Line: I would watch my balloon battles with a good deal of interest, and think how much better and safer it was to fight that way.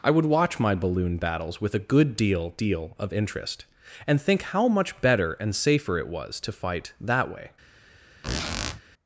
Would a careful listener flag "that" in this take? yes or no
no